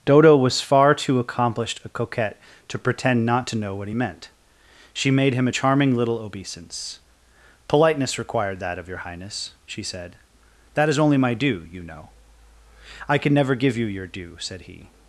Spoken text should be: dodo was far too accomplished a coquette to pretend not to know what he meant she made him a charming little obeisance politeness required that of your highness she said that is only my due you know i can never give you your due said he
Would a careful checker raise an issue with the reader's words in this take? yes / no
no